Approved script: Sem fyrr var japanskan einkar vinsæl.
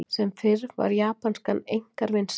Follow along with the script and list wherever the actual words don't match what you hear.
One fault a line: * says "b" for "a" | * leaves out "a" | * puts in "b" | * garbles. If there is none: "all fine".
all fine